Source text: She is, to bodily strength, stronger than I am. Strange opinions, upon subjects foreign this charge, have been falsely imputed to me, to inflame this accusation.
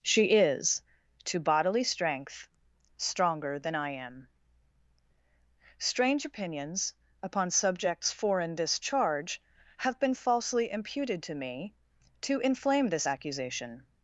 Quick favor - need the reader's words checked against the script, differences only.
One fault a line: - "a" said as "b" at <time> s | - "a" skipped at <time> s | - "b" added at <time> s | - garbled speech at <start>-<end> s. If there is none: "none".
none